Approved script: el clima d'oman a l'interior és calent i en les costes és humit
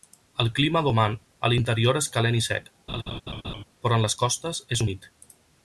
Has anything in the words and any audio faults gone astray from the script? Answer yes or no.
yes